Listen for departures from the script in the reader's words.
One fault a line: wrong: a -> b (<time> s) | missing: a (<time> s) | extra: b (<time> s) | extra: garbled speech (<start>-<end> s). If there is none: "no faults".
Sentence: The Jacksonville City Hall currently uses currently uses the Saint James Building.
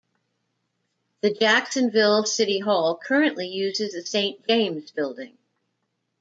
missing: currently uses (3.9 s)